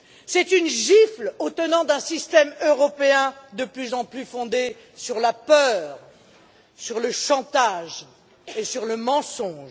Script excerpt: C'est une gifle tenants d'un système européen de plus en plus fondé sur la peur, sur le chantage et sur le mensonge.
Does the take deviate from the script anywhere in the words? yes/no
yes